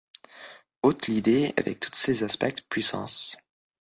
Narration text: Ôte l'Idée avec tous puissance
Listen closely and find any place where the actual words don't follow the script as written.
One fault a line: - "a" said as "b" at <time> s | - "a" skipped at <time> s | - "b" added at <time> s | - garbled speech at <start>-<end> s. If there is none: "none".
- "ses aspects" added at 1.9 s